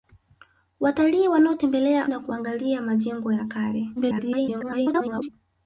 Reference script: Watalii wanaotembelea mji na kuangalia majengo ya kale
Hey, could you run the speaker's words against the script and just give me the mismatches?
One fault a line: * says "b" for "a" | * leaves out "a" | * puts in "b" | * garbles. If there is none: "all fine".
* leaves out "mji"
* garbles